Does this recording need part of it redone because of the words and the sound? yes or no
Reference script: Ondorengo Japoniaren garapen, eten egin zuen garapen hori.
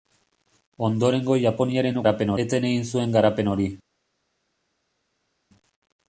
no